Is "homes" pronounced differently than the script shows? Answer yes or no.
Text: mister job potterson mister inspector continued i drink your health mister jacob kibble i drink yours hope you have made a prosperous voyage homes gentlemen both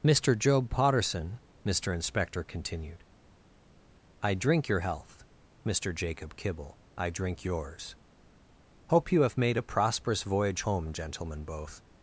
yes